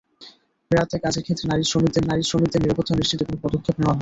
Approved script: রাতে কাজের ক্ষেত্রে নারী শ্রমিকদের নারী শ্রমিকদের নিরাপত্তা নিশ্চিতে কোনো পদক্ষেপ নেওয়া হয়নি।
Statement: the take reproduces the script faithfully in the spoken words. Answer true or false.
true